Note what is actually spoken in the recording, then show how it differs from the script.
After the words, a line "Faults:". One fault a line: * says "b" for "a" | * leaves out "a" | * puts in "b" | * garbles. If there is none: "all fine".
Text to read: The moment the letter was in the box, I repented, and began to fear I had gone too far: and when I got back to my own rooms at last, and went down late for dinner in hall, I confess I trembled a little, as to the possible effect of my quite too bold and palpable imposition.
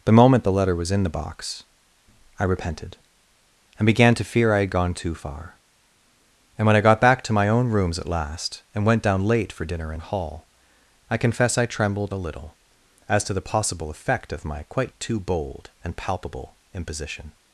The moment the letter was in the box, I repented, and began to fear I had gone too far: and when I got back to my own rooms at last, and went down late for dinner in hall, I confess I trembled a little, as to the possible effect of my quite too bold and palpable imposition.
Faults:
all fine